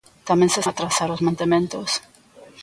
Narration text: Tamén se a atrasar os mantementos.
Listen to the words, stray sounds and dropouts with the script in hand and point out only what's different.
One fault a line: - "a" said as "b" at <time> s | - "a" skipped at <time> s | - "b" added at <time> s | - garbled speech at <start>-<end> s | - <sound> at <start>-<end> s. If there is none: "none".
none